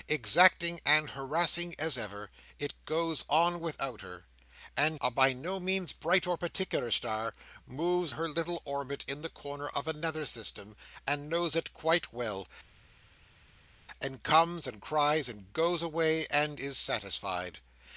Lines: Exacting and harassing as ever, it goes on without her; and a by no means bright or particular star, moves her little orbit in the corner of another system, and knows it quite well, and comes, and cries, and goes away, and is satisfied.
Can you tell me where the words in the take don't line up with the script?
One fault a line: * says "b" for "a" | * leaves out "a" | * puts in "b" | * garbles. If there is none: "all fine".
all fine